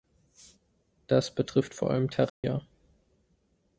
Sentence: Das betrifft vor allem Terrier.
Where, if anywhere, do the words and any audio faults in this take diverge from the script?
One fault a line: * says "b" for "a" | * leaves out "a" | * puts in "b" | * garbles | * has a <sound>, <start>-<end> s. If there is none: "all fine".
* has a dropout, 2.3-2.4 s